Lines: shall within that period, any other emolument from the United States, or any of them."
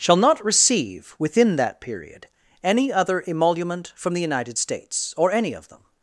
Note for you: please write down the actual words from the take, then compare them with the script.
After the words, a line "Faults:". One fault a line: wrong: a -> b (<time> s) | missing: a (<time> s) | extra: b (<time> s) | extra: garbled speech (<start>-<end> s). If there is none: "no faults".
shall not receive, within that period, any other emolument from the United States, or any of them."
Faults:
extra: not receive (0.1 s)